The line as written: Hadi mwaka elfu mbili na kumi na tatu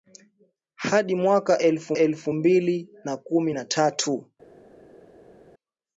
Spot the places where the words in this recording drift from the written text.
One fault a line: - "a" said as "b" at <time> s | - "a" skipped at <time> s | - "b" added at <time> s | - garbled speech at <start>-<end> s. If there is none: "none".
- "elfu" added at 1.9 s